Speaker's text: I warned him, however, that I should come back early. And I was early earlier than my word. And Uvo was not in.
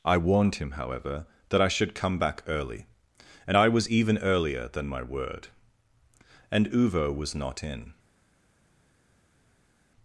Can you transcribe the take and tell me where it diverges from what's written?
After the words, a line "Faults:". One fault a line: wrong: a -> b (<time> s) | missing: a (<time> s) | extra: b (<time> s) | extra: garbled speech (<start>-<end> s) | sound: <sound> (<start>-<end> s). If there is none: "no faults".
I warned him, however, that I should come back early. And I was even earlier than my word. And Uvo was not in.
Faults:
wrong: early -> even (3.9 s)